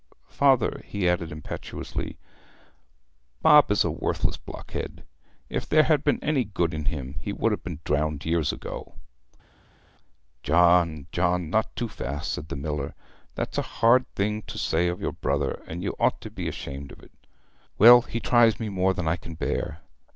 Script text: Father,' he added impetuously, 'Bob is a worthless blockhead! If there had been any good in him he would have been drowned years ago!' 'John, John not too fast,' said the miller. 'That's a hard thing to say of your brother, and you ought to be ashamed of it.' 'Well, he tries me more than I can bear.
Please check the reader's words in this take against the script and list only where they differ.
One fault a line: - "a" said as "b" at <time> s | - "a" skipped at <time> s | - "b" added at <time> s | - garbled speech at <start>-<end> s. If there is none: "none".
none